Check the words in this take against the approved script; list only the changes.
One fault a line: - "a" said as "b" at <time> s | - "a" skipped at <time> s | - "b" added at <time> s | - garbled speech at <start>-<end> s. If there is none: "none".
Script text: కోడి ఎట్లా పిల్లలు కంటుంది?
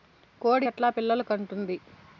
none